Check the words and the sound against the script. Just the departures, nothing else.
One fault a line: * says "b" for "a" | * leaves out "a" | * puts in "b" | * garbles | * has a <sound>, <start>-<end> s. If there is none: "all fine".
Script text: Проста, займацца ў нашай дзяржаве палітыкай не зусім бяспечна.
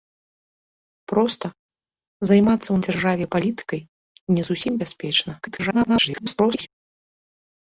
* leaves out "нашай"
* garbles